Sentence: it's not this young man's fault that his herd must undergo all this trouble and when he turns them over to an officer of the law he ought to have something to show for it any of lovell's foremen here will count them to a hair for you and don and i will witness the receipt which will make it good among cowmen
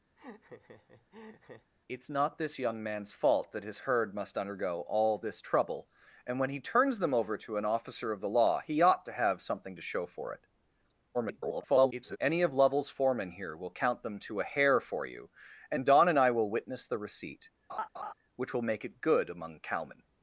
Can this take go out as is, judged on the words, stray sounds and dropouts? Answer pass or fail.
fail